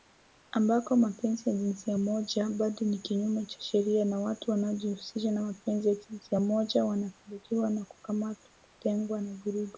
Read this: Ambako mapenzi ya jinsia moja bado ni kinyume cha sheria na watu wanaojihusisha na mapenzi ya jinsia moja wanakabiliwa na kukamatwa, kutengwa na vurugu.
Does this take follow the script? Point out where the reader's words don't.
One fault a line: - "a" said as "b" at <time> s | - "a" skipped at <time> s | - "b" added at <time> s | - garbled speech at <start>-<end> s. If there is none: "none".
none